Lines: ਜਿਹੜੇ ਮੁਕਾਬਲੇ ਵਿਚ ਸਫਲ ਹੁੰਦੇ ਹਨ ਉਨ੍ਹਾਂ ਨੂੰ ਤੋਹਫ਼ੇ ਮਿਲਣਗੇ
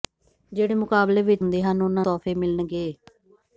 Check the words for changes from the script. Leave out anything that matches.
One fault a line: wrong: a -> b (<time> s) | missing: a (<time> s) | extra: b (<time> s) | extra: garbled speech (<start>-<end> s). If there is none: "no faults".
missing: ਸਫਲ (1.4 s)
missing: ਨੂੰ (2.0 s)